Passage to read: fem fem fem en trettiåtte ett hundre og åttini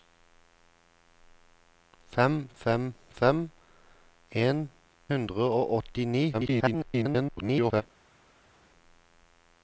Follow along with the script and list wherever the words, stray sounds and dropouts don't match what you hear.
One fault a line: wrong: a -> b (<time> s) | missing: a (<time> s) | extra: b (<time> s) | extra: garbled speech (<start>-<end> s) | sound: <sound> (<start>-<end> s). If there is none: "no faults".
missing: trettiåtte ett (4.6 s)
extra: garbled speech (6.3-7.8 s)